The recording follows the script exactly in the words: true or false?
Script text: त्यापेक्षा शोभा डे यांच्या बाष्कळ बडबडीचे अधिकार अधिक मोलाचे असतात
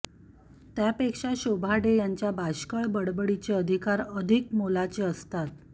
true